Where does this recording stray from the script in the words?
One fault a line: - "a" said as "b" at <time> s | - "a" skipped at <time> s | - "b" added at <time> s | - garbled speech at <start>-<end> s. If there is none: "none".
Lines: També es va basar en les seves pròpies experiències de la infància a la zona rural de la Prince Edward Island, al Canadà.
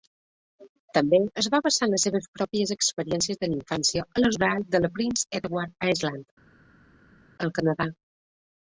- "zona" skipped at 4.3 s